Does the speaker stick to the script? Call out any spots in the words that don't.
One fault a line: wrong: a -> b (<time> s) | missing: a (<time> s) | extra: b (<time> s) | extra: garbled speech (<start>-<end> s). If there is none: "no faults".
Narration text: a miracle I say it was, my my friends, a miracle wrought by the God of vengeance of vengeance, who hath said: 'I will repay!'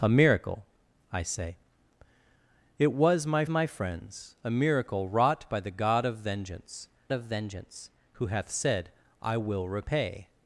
no faults